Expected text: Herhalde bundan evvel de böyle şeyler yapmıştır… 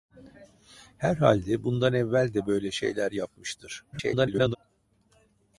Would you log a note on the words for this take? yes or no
yes